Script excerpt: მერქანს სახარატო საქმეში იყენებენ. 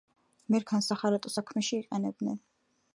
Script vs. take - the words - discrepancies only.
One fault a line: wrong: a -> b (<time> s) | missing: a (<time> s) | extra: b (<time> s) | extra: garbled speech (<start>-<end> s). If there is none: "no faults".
no faults